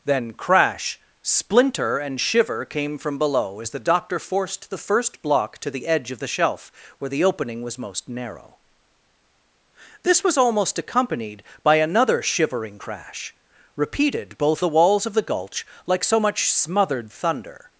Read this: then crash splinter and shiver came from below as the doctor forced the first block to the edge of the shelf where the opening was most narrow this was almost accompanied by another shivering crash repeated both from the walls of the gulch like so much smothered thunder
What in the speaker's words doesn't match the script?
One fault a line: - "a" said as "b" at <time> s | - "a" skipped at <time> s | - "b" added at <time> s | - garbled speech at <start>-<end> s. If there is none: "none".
- "from" skipped at 14.6 s